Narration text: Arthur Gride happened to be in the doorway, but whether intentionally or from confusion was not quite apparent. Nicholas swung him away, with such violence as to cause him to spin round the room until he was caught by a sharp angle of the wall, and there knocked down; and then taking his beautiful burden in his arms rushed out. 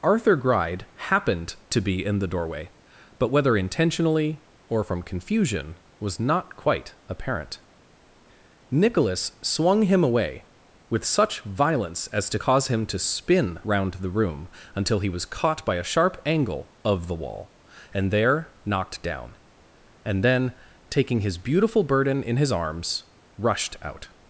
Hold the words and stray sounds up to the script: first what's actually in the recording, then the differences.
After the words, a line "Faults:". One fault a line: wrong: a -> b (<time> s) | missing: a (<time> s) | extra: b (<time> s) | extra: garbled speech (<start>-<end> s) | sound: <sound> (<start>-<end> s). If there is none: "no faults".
Arthur Gride happened to be in the doorway, but whether intentionally or from confusion was not quite apparent. Nicholas swung him away, with such violence as to cause him to spin round the room until he was caught by a sharp angle of the wall, and there knocked down; and then taking his beautiful burden in his arms rushed out.
Faults:
no faults